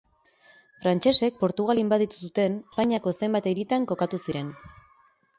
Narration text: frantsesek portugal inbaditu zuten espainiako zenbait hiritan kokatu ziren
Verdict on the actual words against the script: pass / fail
pass